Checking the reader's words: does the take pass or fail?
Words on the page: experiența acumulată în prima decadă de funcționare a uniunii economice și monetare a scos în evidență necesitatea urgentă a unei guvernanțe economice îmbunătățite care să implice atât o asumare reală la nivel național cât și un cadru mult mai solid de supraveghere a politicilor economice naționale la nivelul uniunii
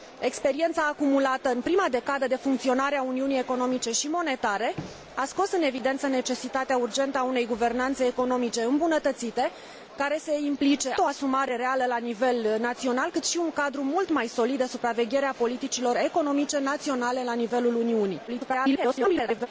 fail